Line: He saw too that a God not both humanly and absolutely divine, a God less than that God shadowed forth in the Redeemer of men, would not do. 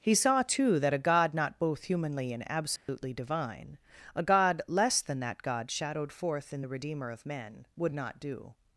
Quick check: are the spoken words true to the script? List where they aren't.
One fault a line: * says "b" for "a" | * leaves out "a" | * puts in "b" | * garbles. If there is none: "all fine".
all fine